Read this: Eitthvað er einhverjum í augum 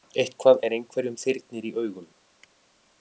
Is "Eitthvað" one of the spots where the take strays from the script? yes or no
no